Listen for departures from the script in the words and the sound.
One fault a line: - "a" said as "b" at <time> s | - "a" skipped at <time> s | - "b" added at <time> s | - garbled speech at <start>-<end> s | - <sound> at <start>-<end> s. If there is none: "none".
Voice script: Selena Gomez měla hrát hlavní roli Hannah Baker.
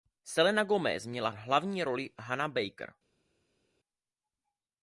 - "hrát" skipped at 1.3 s